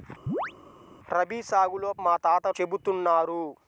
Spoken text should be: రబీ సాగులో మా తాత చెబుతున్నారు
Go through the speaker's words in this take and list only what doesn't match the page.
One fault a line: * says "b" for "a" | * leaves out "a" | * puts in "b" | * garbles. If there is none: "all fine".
all fine